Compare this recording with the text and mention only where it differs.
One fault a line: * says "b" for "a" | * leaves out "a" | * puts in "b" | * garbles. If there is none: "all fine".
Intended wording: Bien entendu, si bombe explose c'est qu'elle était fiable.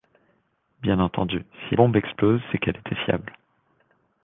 all fine